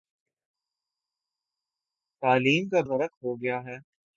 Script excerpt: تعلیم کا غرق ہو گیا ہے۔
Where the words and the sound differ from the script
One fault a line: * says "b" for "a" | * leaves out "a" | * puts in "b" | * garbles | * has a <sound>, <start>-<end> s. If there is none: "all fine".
all fine